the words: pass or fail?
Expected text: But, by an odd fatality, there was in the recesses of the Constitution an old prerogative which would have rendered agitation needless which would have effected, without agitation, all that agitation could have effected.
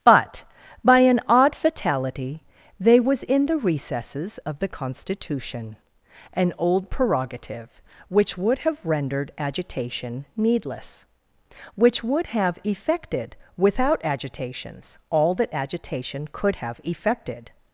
fail